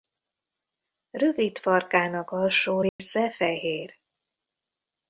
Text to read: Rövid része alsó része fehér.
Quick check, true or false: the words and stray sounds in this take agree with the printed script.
false